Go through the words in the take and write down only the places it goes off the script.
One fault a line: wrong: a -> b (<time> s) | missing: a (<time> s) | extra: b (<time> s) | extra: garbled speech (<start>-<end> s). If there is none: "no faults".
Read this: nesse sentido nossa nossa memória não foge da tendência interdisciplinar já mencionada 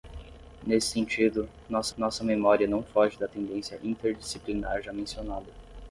no faults